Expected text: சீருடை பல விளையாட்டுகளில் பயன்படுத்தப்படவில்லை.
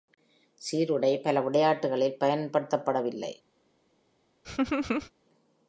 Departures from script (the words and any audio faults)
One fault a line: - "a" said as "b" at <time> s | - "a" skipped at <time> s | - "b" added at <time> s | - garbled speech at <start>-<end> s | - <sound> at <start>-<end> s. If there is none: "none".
- laugh at 4.4-5.1 s